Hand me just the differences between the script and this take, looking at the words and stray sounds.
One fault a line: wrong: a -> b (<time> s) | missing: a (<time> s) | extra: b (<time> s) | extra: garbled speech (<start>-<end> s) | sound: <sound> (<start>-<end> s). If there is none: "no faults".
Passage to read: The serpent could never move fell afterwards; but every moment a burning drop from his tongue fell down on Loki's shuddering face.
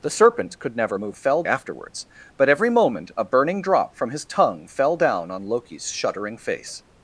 no faults